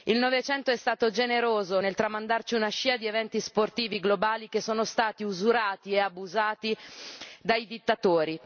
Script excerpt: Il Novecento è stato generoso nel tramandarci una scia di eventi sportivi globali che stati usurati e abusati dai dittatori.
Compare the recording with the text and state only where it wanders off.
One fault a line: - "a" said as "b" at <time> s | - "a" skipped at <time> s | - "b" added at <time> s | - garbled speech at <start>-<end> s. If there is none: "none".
- "sono" added at 4.6 s